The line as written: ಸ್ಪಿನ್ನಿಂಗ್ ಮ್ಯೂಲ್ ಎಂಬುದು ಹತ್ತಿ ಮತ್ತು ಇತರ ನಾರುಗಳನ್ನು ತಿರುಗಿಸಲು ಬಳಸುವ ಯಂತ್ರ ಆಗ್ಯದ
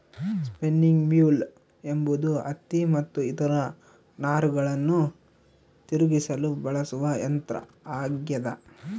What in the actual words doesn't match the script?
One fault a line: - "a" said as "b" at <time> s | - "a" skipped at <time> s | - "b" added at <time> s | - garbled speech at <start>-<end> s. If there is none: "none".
none